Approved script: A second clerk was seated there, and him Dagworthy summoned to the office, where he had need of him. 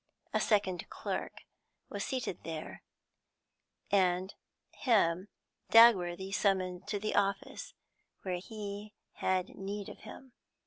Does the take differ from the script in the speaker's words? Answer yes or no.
no